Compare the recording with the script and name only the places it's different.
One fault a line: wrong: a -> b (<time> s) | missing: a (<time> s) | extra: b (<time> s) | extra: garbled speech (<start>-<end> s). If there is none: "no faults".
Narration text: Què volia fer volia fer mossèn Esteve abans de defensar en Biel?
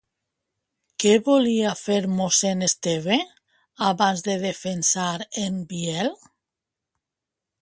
missing: volia fer (2.0 s)